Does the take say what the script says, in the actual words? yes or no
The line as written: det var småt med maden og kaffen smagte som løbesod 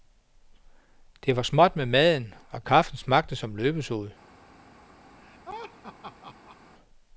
yes